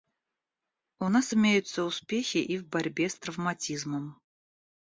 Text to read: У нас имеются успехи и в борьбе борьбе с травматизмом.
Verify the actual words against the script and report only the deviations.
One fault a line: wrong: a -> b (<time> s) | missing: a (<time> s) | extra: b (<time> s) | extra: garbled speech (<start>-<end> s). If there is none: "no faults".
missing: борьбе (3.1 s)